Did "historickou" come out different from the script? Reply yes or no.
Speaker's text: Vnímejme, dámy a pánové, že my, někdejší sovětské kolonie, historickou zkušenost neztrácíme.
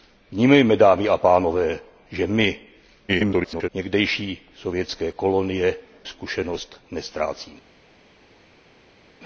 yes